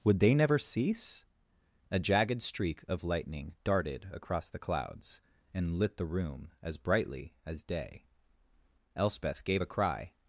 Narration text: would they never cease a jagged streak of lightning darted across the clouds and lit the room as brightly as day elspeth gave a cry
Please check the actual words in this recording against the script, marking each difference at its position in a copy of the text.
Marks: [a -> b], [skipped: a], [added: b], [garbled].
would they never cease a jagged streak of lightning darted across the clouds and lit the room as brightly as day elspeth gave a cry